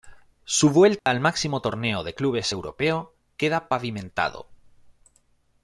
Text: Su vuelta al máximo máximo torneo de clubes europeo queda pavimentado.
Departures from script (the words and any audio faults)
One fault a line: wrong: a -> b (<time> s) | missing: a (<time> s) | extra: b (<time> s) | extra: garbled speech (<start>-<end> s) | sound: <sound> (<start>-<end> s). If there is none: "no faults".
sound: dropout (1.0-1.1 s)
missing: máximo (1.6 s)